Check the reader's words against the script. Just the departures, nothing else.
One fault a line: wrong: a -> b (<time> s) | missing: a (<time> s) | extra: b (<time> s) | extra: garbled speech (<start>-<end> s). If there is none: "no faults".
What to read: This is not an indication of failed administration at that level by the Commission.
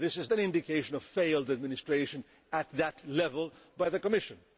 missing: not (0.3 s)